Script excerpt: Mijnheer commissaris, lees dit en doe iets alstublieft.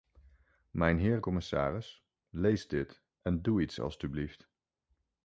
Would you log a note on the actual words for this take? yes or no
no